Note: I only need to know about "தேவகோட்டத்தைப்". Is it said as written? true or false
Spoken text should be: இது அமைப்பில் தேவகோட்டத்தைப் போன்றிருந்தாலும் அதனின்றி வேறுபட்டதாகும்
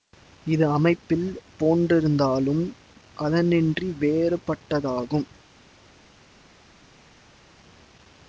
false